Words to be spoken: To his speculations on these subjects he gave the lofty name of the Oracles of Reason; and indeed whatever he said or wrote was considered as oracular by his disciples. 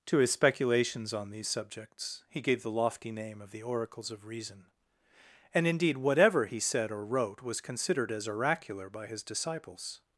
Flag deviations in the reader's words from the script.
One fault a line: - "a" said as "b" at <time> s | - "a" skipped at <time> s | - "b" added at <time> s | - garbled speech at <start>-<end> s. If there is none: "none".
none